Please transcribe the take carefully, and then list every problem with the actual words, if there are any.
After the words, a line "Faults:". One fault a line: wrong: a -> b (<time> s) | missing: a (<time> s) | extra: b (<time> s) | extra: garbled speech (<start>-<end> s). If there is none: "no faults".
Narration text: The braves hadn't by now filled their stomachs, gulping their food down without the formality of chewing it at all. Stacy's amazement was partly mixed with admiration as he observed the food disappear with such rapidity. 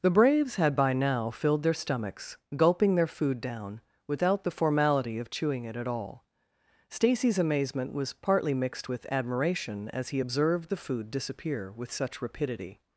The braves had by now filled their stomachs, gulping their food down without the formality of chewing it at all. Stacy's amazement was partly mixed with admiration as he observed the food disappear with such rapidity.
Faults:
wrong: hadn't -> had (0.6 s)